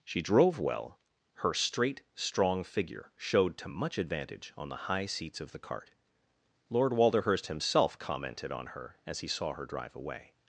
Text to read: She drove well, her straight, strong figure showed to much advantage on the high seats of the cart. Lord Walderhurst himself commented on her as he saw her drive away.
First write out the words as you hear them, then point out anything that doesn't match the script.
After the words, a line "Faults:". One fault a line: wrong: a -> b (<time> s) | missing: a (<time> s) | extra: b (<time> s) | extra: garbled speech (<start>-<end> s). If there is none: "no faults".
She drove well, her straight, strong figure showed to much advantage on the high seats of the cart. Lord Walderhurst himself commented on her as he saw her drive away.
Faults:
no faults